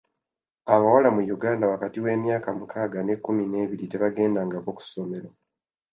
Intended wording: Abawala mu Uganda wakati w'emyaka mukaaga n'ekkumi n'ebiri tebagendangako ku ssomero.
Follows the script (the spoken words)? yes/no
yes